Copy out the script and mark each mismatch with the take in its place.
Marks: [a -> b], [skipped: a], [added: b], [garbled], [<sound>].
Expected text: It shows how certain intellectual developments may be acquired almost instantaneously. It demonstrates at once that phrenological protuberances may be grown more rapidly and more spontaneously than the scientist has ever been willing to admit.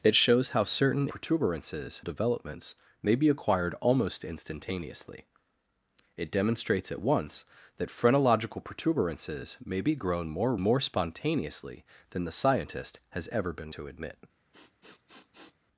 It shows how certain [intellectual -> protuberances] developments may be acquired almost instantaneously. It demonstrates at once that phrenological protuberances may be grown more [skipped: rapidly and] more spontaneously than the scientist has ever been [skipped: willing] to admit. [sniff]